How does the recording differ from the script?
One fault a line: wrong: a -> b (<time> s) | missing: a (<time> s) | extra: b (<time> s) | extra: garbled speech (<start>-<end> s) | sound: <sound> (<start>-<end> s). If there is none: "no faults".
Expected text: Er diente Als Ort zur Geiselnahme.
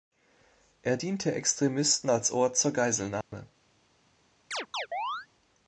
extra: Extremisten (1.3 s)
sound: dropout (3.2-3.3 s)
sound: chirp (4.5-5.3 s)